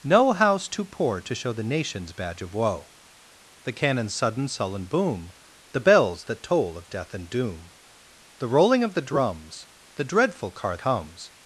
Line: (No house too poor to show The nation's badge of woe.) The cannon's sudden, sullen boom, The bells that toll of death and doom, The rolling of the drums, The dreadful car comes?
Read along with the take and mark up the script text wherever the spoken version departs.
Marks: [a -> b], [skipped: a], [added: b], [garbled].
(No house too poor to show The nation's badge of woe.) The cannon's sudden, sullen boom, The bells that toll of death and doom, The rolling of the drums, The dreadful car comes?